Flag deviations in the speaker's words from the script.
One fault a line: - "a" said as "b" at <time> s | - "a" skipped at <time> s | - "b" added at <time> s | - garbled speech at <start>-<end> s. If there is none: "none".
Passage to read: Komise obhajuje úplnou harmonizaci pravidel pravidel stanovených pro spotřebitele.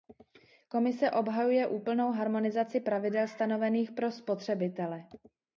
- "pravidel" skipped at 3.3 s